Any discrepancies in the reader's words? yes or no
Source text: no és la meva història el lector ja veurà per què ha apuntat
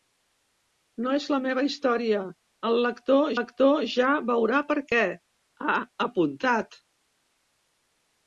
yes